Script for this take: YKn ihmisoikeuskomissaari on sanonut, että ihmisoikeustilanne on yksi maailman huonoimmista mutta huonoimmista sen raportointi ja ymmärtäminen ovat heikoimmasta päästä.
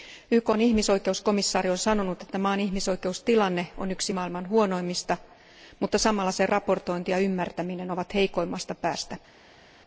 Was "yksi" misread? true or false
false